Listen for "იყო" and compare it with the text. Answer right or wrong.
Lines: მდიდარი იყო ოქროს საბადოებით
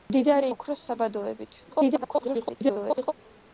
wrong